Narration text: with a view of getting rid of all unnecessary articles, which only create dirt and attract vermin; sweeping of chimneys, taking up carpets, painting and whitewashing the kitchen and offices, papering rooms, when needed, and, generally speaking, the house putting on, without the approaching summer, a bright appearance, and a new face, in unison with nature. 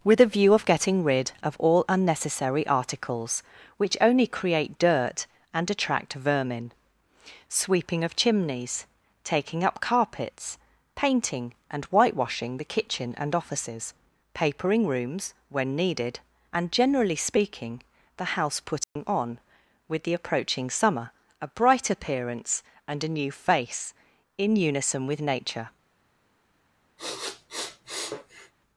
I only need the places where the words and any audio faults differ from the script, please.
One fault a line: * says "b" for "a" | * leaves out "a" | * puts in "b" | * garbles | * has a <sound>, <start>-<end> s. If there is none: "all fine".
* has a dropout, 18.8-19.0 s
* says "with" for "without"
* has a sniff, 27.0-28.5 s